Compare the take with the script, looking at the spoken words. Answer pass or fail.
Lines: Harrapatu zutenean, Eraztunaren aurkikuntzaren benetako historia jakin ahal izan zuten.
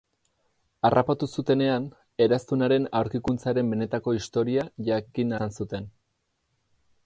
fail